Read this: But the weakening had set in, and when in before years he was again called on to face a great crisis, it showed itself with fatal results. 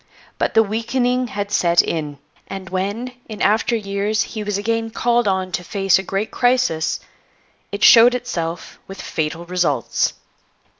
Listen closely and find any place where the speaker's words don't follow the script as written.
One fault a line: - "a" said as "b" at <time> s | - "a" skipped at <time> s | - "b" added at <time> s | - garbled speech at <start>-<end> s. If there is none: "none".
- "before" said as "after" at 3.4 s